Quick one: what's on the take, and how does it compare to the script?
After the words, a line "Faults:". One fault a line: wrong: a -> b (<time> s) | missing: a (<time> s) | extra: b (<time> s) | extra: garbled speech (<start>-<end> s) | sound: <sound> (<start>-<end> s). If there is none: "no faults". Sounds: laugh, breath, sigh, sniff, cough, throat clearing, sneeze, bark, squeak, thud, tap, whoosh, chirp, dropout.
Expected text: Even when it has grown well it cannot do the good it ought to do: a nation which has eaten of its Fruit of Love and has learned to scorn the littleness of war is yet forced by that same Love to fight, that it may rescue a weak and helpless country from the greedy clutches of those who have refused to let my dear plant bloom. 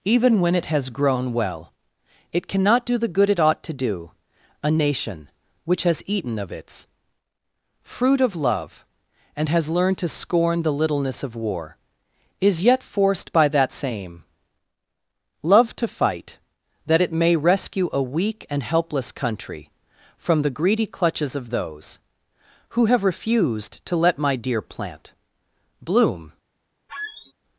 Even when it has grown well it cannot do the good it ought to do: a nation which has eaten of its Fruit of Love and has learned to scorn the littleness of war is yet forced by that same Love to fight, that it may rescue a weak and helpless country from the greedy clutches of those who have refused to let my dear plant bloom.
Faults:
sound: squeak (26.9-27.3 s)